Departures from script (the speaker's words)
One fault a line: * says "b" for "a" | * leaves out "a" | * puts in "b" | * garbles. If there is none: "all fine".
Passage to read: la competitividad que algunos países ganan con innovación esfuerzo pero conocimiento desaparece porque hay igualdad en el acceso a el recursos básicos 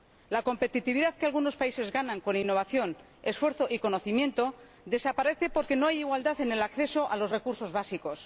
* says "y" for "pero"
* puts in "no"
* says "los" for "el"